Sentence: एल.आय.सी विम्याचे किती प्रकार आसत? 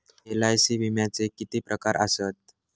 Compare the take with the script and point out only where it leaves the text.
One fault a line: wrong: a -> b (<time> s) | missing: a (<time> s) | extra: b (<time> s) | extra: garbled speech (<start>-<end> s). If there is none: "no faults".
no faults